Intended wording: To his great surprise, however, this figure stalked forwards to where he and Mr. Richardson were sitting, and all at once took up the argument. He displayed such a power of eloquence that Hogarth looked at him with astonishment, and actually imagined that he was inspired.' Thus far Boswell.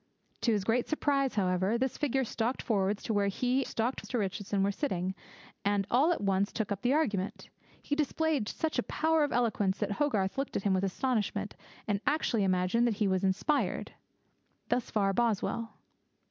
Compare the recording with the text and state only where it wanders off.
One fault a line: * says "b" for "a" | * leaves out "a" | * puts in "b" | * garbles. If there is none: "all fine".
* says "stalked" for "and"